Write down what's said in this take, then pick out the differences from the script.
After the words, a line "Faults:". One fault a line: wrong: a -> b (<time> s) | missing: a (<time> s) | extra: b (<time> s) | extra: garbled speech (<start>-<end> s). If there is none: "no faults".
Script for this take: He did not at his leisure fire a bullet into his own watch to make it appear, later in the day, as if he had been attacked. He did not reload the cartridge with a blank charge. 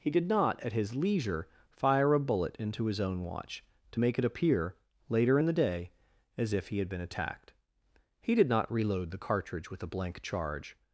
He did not at his leisure fire a bullet into his own watch to make it appear, later in the day, as if he had been attacked. He did not reload the cartridge with a blank charge.
Faults:
no faults